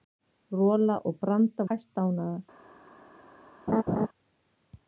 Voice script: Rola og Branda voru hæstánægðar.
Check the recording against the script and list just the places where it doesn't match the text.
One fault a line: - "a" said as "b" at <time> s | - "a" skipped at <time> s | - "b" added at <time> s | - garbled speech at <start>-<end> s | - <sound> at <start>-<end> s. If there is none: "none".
- "voru" skipped at 1.7 s
- laugh at 3.7-4.1 s